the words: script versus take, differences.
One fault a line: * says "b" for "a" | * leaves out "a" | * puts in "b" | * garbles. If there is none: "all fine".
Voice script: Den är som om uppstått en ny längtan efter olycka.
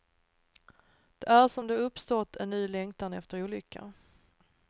* says "Det" for "Den"
* puts in "det"